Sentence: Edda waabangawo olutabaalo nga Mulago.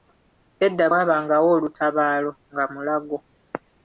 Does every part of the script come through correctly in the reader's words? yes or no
yes